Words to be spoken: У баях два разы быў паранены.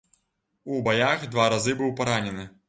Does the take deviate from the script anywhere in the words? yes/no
no